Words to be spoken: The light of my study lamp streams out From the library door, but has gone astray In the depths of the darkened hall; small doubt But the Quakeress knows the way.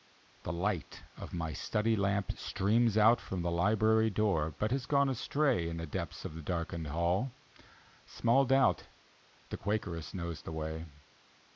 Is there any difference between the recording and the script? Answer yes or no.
yes